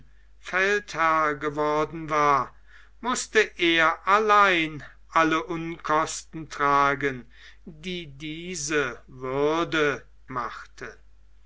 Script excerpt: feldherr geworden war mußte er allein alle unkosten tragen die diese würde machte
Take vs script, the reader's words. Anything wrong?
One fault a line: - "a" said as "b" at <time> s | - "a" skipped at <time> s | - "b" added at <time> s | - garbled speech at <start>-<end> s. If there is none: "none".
none